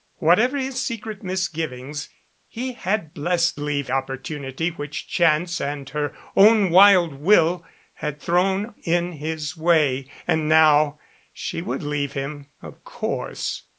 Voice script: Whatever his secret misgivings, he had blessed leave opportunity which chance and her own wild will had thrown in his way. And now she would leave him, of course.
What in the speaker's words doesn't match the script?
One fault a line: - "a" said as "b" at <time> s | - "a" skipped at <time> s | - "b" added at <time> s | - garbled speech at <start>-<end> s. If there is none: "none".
none